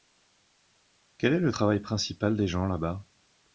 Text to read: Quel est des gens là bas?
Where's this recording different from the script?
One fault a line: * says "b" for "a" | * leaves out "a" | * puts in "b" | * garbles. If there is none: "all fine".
* puts in "le travail principal"